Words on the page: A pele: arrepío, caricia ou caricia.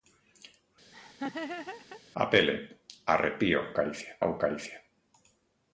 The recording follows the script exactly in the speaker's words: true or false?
true